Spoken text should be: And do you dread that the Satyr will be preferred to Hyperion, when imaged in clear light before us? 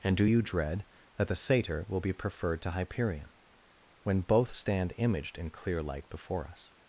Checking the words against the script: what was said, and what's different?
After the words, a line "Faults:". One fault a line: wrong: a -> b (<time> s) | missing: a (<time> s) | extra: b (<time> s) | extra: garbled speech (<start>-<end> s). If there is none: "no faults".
And do you dread that the Satyr will be preferred to Hyperion, when both stand imaged in clear light before us?
Faults:
extra: both stand (4.2 s)